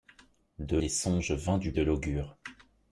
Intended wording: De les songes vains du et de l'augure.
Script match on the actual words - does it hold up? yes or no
yes